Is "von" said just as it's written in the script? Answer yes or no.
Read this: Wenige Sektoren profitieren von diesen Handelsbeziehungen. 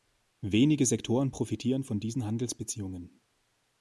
yes